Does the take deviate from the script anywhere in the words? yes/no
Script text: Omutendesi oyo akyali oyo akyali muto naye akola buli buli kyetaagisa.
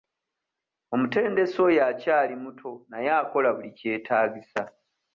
yes